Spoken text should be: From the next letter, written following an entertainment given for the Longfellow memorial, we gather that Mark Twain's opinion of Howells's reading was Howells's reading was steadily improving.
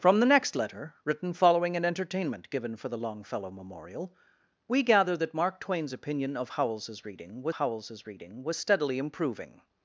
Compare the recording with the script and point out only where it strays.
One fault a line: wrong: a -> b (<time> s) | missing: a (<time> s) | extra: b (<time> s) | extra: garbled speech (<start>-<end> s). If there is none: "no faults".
no faults